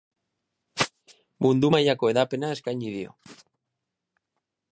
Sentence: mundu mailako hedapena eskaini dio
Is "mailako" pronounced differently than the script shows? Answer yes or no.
no